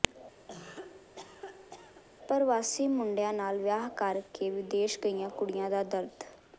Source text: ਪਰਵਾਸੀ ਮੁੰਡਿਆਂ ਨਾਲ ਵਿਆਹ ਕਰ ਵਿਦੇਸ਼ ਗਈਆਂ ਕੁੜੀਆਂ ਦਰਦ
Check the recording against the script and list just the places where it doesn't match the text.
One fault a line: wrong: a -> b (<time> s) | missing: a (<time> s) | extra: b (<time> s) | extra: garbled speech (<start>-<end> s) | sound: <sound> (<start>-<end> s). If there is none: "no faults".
sound: cough (0.5-2.0 s)
extra: ਕੇ (4.3 s)
extra: ਦਾ (5.7 s)